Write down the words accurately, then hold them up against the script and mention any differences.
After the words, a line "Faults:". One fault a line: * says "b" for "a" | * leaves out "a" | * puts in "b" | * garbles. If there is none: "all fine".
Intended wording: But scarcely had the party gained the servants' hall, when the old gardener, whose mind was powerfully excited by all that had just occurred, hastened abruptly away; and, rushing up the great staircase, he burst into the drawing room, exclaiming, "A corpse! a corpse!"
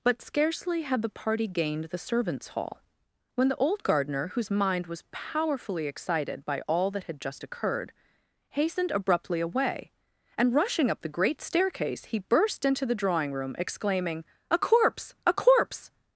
But scarcely had the party gained the servants' hall, when the old gardener, whose mind was powerfully excited by all that had just occurred, hastened abruptly away; and, rushing up the great staircase, he burst into the drawing room, exclaiming, "A corpse! a corpse!"
Faults:
all fine